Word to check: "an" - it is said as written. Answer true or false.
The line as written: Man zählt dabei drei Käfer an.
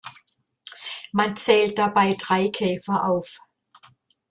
false